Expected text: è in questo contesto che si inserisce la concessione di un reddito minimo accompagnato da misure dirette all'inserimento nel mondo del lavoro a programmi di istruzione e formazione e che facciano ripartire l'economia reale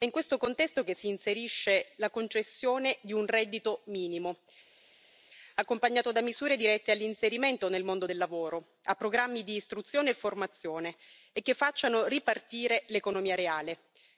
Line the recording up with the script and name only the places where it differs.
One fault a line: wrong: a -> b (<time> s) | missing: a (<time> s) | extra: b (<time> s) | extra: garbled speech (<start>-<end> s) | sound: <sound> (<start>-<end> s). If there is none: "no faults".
no faults